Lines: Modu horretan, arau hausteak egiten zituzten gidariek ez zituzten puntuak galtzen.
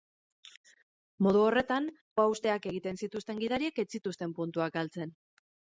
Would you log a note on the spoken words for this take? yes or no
yes